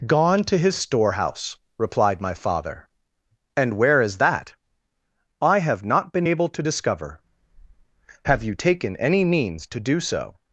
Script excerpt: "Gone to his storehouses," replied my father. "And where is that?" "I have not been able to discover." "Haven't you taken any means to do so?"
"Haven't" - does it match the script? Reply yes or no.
no